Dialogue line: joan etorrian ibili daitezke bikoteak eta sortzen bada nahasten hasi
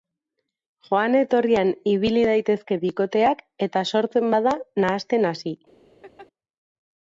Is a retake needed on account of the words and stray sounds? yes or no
yes